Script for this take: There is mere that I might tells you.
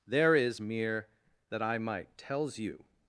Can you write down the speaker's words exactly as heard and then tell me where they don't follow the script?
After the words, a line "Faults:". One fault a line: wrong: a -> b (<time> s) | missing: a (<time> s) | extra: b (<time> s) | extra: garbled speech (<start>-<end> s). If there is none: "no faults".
There is mere that I might tells you.
Faults:
no faults